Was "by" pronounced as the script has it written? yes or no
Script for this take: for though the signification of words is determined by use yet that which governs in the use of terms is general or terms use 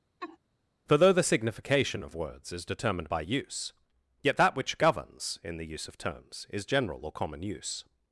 yes